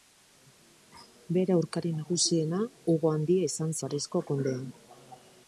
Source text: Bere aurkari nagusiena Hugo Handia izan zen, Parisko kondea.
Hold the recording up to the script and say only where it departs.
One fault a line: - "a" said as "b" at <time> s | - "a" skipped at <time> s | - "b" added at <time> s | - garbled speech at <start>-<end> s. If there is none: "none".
- "zen" skipped at 3.8 s